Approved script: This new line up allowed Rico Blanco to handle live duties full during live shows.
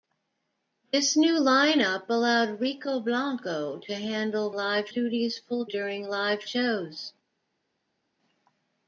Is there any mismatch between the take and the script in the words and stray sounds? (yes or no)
no